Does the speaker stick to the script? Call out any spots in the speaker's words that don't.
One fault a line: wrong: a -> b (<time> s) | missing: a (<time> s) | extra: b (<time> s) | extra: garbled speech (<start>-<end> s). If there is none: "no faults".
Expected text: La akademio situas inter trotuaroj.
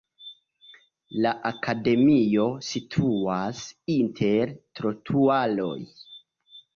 no faults